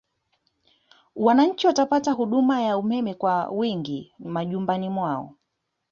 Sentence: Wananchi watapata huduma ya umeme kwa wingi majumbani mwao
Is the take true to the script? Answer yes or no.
yes